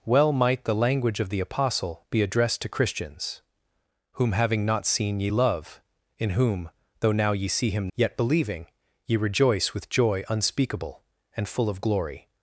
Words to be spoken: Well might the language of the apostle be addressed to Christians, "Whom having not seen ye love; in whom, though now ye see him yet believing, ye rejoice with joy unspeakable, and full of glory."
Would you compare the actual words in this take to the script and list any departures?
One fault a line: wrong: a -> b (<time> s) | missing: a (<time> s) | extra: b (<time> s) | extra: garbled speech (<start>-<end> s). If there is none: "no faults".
no faults